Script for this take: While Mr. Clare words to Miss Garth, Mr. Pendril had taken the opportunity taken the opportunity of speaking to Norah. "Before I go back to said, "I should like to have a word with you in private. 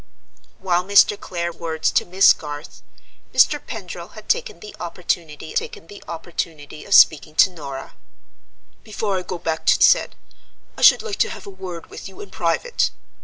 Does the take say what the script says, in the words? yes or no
yes